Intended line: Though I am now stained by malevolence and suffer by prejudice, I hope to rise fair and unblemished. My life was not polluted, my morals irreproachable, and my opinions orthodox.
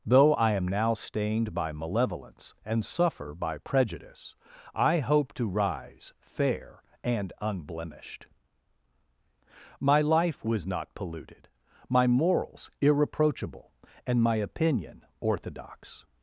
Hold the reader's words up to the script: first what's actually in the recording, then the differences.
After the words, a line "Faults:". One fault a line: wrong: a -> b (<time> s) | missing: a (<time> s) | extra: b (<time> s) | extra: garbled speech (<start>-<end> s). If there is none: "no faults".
Though I am now stained by malevolence and suffer by prejudice, I hope to rise fair and unblemished. My life was not polluted, my morals irreproachable, and my opinion orthodox.
Faults:
wrong: opinions -> opinion (14.4 s)